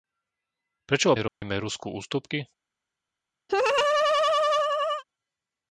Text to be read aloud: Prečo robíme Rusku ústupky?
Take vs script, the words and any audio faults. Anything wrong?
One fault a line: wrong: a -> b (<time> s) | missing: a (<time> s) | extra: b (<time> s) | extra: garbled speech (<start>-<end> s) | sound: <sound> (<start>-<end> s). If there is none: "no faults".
sound: dropout (1.3-1.4 s)
sound: laugh (3.5-5.0 s)